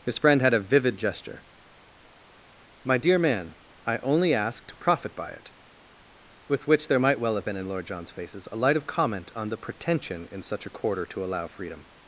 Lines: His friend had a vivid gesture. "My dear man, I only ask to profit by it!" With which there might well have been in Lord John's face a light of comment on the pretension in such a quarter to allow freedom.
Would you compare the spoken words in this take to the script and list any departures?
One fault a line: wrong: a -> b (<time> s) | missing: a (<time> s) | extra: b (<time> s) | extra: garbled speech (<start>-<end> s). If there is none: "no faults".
wrong: face -> faces (8.1 s)